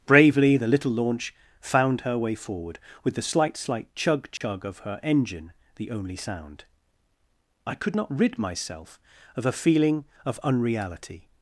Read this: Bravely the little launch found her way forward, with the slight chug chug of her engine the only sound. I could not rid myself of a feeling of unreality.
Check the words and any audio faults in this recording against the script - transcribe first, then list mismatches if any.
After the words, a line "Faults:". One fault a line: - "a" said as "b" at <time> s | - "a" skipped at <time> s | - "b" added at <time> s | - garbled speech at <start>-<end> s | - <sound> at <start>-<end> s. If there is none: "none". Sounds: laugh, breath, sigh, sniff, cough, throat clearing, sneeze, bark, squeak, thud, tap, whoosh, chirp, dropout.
Bravely the little launch found her way forward, with the slight slight chug chug of her engine the only sound. I could not rid myself of a feeling of unreality.
Faults:
- "slight" added at 3.6 s
- dropout at 4.4-4.4 s